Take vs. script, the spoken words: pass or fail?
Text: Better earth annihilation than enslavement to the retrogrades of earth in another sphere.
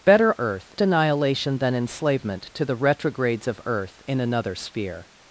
pass